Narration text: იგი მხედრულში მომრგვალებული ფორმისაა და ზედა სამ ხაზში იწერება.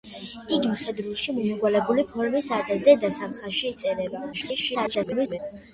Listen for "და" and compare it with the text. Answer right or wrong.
right